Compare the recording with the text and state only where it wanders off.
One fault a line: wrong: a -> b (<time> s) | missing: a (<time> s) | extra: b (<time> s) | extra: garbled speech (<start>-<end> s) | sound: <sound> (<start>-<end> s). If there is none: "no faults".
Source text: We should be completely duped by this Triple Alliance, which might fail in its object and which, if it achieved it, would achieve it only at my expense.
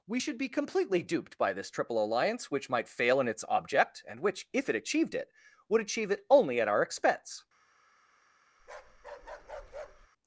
wrong: my -> our (6.7 s)
sound: bark (8.6-10.1 s)